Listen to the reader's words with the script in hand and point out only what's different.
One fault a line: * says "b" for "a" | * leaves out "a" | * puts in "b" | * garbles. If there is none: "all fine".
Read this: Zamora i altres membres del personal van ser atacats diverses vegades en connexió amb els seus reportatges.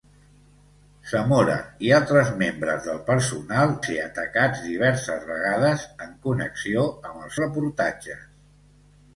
* leaves out "van"
* leaves out "seus"